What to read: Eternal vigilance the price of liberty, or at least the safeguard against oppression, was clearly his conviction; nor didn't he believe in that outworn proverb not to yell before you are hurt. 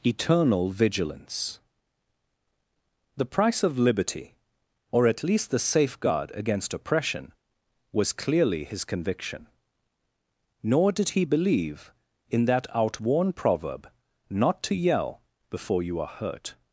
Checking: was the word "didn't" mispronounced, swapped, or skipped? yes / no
yes